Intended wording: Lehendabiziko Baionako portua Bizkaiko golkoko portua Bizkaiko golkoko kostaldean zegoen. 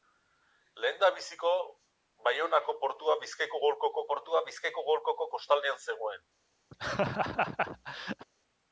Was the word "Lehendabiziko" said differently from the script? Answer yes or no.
no